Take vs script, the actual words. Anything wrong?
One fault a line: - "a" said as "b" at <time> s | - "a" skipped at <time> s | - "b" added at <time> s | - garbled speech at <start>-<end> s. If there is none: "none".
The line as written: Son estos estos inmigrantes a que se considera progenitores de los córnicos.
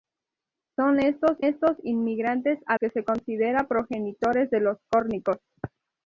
none